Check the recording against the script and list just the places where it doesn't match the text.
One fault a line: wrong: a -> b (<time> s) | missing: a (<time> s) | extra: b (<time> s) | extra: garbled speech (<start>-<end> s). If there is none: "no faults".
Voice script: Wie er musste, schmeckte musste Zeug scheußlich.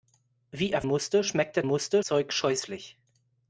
no faults